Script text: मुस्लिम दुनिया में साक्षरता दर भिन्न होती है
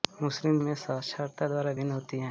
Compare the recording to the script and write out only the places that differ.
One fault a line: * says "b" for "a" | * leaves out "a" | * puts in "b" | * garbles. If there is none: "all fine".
* leaves out "दुनिया"